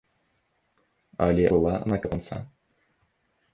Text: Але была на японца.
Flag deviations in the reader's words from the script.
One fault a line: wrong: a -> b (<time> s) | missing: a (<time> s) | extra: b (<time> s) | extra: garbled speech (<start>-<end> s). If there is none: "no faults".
no faults